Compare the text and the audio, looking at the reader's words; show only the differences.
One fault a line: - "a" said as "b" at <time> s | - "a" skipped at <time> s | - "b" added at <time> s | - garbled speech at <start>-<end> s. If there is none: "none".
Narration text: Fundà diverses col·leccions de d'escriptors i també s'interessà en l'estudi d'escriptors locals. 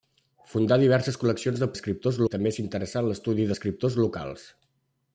none